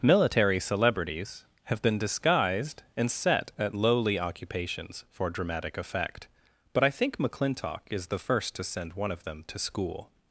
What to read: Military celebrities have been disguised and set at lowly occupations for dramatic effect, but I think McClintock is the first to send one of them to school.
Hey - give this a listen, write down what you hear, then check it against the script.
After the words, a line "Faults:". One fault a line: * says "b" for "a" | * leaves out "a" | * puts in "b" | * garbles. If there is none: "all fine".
Military celebrities have been disguised and set at lowly occupations for dramatic effect, but I think McClintock is the first to send one of them to school.
Faults:
all fine